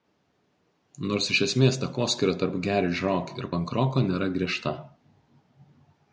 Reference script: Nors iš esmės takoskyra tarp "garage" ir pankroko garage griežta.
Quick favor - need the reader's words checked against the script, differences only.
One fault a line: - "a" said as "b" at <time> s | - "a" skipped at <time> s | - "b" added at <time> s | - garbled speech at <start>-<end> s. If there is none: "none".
- "rock" added at 3.1 s
- "garage" said as "nėra" at 4.1 s